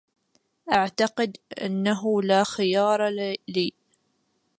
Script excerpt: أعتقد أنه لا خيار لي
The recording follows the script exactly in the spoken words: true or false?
true